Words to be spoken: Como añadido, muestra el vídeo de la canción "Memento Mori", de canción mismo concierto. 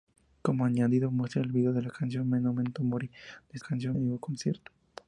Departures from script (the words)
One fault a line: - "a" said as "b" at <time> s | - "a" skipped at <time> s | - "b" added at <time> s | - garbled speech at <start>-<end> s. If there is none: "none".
none